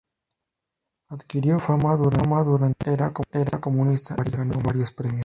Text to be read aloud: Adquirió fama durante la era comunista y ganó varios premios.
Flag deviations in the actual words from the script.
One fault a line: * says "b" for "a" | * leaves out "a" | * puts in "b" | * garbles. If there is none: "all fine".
all fine